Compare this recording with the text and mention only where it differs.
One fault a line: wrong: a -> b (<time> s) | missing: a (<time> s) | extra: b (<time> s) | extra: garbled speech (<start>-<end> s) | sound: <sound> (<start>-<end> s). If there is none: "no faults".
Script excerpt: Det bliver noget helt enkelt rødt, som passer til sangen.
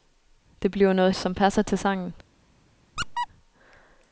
missing: helt enkelt rødt (1.1 s)
sound: squeak (3.0-3.3 s)